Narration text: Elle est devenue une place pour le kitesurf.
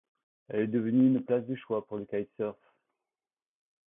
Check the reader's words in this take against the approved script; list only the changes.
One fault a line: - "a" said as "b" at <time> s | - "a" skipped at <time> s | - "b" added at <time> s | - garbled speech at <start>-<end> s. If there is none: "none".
- "de choix" added at 1.4 s